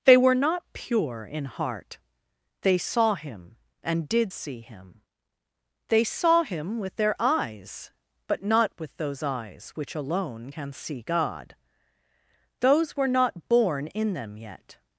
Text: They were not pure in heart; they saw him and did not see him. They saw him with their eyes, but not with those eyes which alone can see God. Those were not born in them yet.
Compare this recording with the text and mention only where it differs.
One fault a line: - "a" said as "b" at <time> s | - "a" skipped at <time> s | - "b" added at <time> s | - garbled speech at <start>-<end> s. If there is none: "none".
- "not" skipped at 4.3 s